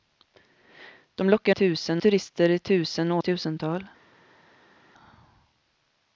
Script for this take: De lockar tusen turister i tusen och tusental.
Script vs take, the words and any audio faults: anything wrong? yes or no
no